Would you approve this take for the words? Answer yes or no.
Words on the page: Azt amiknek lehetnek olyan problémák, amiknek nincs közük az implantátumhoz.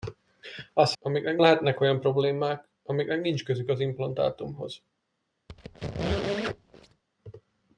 yes